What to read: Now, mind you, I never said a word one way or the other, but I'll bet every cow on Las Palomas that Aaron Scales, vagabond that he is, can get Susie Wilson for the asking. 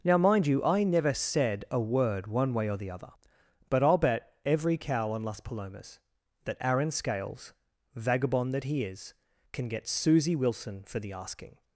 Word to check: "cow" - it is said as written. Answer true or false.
true